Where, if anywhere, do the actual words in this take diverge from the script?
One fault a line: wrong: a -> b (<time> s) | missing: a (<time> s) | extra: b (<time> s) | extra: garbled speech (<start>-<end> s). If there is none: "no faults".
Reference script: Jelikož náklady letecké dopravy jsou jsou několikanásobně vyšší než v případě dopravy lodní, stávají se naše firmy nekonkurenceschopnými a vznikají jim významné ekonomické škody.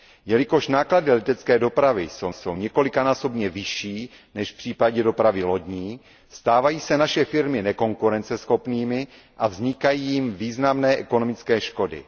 no faults